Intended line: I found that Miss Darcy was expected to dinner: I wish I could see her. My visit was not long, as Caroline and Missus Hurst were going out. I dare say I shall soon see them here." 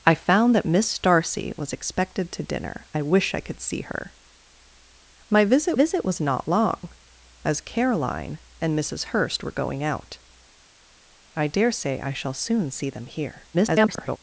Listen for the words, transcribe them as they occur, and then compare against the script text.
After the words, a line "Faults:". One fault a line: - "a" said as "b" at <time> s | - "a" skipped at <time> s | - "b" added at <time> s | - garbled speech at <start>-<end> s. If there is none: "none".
I found that Miss Darcy was expected to dinner: I wish I could see her. My visit visit was not long, as Caroline and Missus Hurst were going out. I dare say I shall soon see them here." [garbled]
Faults:
- "visit" added at 5.7 s
- garbled speech at 13.5-14.2 s